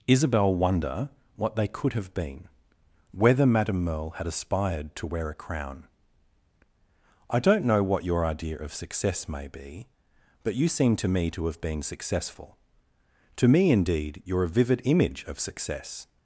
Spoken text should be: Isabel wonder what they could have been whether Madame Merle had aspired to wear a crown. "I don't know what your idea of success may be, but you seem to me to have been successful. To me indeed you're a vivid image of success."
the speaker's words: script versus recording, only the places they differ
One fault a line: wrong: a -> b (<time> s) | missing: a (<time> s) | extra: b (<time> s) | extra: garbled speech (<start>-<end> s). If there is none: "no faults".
no faults